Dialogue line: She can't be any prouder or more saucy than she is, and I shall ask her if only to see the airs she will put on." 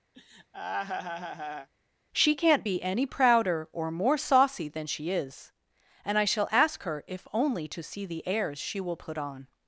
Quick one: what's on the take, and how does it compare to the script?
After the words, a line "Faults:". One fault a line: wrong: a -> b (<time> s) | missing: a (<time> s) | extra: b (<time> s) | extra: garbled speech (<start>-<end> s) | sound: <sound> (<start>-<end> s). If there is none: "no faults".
She can't be any prouder or more saucy than she is, and I shall ask her if only to see the airs she will put on."
Faults:
sound: laugh (0.1-1.7 s)